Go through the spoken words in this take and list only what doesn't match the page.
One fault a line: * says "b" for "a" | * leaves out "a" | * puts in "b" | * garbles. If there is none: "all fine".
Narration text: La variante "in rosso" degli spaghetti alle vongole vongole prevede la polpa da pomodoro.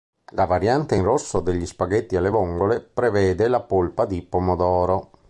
* leaves out "vongole"
* says "di" for "da"